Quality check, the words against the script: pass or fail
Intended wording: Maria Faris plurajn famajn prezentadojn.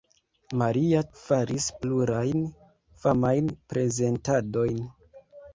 pass